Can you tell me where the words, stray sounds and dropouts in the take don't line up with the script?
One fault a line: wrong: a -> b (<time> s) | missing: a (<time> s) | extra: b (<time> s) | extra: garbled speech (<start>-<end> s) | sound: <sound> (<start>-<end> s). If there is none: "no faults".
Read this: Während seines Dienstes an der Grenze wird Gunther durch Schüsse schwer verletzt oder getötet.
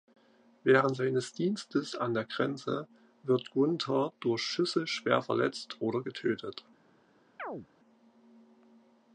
sound: chirp (7.4-7.7 s)